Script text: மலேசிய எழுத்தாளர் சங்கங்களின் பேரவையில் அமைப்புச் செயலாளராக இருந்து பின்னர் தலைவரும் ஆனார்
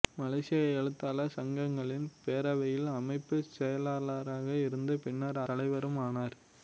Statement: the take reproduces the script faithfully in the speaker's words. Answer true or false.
true